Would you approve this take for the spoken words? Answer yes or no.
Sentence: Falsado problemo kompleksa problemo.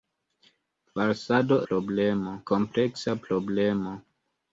yes